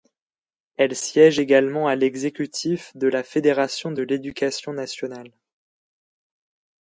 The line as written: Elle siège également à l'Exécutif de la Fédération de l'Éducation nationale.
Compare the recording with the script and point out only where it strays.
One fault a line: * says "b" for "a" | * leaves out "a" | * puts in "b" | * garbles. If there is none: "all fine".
all fine